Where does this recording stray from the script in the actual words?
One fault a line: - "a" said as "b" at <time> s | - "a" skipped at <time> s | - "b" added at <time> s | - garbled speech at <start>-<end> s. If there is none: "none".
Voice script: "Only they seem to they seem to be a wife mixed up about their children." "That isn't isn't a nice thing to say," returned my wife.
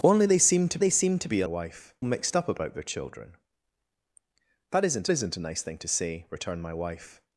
none